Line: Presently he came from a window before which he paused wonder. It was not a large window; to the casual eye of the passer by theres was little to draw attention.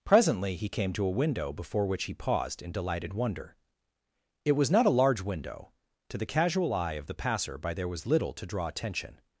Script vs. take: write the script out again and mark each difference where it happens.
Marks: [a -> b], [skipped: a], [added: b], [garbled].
Presently he came [from -> to] a window before which he paused [added: in delighted] wonder. It was not a large window; to the casual eye of the passer by [theres -> there] was little to draw attention.